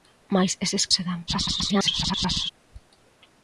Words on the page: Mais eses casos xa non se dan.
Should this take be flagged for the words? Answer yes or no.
yes